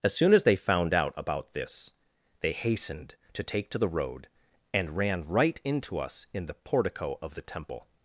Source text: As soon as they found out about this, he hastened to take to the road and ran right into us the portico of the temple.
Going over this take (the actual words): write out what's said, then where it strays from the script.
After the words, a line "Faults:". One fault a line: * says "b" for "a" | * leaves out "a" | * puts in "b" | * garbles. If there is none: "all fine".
As soon as they found out about this, they hastened to take to the road and ran right into us in the portico of the temple.
Faults:
* says "they" for "he"
* puts in "in"